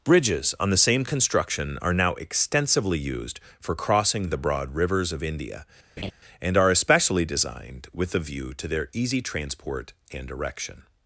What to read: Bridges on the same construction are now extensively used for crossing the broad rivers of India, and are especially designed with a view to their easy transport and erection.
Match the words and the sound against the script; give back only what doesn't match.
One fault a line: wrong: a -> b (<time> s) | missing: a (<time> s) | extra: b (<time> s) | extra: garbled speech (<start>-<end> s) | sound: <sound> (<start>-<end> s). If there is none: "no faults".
sound: laugh (6.0-6.1 s)